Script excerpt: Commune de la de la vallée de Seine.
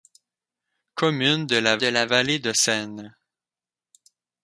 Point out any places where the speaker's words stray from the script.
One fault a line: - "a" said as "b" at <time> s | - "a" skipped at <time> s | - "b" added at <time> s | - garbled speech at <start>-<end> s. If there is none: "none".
none